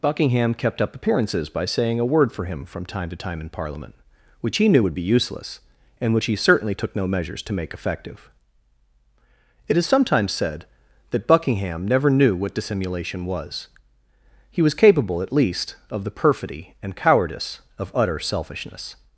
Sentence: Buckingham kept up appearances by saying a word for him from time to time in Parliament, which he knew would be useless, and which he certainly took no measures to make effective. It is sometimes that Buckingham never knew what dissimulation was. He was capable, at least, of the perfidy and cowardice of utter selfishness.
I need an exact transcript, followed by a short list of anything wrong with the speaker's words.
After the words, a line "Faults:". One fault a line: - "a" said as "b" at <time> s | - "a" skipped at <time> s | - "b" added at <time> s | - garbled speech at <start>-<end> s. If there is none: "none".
Buckingham kept up appearances by saying a word for him from time to time in Parliament, which he knew would be useless, and which he certainly took no measures to make effective. It is sometimes said that Buckingham never knew what dissimulation was. He was capable, at least, of the perfidy and cowardice of utter selfishness.
Faults:
- "said" added at 10.3 s